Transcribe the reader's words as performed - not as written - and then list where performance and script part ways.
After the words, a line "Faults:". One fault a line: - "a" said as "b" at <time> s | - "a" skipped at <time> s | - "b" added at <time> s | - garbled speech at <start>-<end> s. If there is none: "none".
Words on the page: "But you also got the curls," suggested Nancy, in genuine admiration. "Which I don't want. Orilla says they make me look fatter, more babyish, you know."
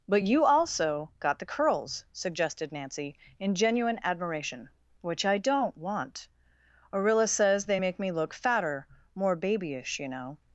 "But you also got the curls," suggested Nancy, in genuine admiration. "Which I don't want. Orilla says they make me look fatter, more babyish, you know."
Faults:
none